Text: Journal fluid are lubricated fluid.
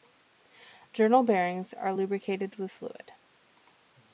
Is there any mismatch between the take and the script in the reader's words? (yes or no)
yes